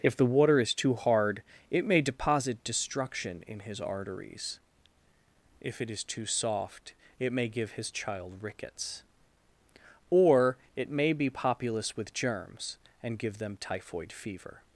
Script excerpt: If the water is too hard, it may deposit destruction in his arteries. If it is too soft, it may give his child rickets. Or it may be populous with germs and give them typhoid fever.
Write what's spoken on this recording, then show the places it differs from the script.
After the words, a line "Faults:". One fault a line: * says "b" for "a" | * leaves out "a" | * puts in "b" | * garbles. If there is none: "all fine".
If the water is too hard, it may deposit destruction in his arteries. If it is too soft, it may give his child rickets. Or it may be populous with germs and give them typhoid fever.
Faults:
all fine